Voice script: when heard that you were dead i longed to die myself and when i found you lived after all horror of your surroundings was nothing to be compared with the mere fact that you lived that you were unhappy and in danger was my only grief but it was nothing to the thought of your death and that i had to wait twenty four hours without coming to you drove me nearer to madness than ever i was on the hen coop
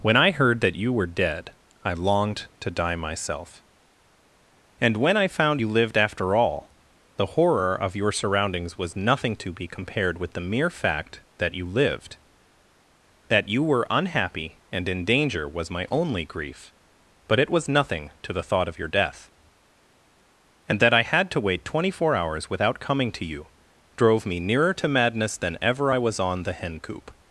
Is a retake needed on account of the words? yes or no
yes